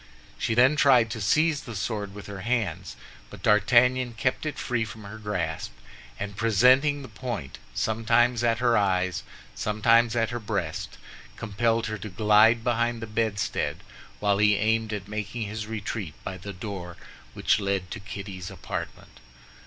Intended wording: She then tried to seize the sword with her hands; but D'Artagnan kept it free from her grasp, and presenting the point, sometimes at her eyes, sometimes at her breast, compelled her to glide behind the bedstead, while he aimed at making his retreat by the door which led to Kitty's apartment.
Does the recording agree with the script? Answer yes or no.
yes